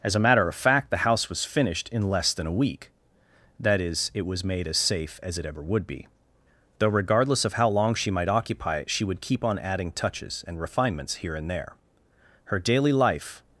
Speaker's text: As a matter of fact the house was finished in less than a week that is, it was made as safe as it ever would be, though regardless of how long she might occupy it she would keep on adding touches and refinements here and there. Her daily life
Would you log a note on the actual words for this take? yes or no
no